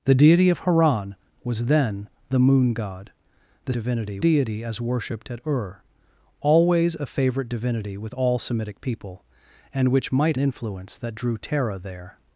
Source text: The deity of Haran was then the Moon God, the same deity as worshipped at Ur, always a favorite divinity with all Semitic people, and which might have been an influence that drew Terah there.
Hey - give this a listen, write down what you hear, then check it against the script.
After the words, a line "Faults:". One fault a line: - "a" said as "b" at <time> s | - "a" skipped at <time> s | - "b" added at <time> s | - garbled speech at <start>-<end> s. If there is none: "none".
The deity of Haran was then the Moon God, the divinity deity as worshipped at Ur, always a favorite divinity with all Semitic people, and which might influence that drew Terah there.
Faults:
- "same" said as "divinity" at 3.7 s
- "have been an" skipped at 10.4 s